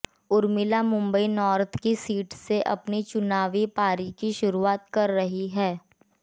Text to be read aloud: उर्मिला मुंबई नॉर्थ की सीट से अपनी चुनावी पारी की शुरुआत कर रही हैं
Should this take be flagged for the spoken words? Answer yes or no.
no